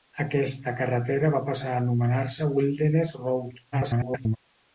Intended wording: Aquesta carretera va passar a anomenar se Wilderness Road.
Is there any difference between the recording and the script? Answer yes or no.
yes